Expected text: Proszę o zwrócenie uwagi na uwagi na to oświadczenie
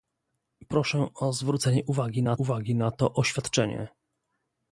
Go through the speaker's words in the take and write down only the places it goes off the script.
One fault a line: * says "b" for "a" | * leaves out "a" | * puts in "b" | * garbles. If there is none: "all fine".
all fine